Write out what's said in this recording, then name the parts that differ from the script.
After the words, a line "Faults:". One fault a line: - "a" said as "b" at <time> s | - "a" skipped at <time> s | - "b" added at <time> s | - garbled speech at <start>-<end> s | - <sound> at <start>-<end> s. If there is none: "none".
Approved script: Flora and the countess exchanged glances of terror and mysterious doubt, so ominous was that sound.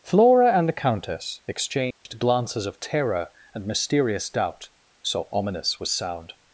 Flora and the countess exchanged glances of terror and mysterious doubt, so ominous was sound.
Faults:
- dropout at 1.9-2.1 s
- "that" skipped at 5.9 s